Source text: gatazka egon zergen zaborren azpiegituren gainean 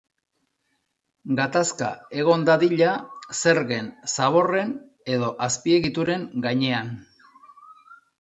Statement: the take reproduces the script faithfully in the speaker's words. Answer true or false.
false